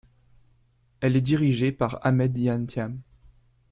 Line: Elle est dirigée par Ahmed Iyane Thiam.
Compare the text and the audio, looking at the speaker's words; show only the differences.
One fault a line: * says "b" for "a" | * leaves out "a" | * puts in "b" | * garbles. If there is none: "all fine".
all fine